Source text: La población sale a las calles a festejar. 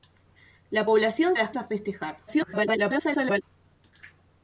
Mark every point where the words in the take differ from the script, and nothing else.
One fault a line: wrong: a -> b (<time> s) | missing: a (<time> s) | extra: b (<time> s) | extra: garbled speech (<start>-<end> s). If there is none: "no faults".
missing: sale (1.3 s)
missing: calles (1.5 s)
extra: garbled speech (2.3-3.4 s)